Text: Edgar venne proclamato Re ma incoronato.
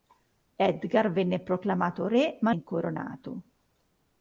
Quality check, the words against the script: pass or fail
pass